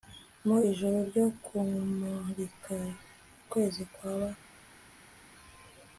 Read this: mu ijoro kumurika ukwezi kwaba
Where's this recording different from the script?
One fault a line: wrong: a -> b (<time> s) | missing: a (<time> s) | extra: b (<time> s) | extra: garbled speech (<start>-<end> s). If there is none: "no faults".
extra: ryo (1.1 s)